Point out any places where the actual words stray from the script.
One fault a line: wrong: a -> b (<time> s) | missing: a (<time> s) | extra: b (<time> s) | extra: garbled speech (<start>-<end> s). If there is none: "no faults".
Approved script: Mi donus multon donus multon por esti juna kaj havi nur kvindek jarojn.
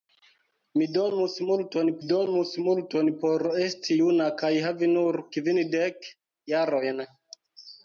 no faults